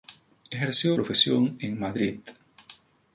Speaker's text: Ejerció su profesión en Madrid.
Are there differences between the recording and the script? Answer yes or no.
yes